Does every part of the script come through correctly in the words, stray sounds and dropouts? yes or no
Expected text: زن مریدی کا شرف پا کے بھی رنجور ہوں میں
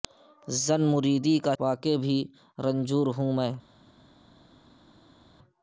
no